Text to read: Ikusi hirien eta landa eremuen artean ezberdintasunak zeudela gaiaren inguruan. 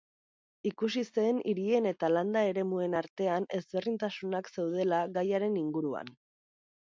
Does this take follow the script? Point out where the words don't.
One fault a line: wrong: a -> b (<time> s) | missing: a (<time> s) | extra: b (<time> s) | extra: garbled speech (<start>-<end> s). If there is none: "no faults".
extra: zen (1.2 s)